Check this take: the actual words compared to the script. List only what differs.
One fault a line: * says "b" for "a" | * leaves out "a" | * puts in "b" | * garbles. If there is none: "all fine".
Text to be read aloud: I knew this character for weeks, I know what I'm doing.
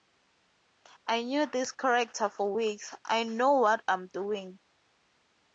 all fine